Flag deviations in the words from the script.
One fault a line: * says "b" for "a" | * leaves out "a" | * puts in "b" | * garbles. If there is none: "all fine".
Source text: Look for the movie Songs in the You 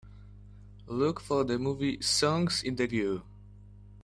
all fine